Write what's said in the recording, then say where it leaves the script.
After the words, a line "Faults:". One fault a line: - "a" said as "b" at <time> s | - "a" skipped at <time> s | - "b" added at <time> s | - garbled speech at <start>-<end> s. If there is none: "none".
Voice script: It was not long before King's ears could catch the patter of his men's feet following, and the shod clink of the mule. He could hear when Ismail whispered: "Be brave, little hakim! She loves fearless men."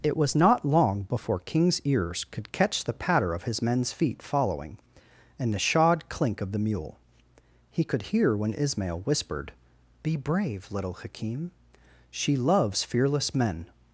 It was not long before King's ears could catch the patter of his men's feet following, and the shod clink of the mule. He could hear when Ismail whispered: "Be brave, little hakim! She loves fearless men."
Faults:
none